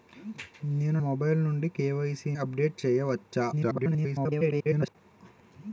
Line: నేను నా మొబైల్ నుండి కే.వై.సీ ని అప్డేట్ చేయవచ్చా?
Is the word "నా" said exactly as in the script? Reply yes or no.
no